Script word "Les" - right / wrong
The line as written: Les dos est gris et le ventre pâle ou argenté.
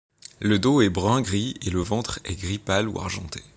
wrong